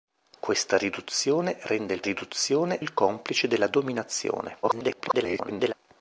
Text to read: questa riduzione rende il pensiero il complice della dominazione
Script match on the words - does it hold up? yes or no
no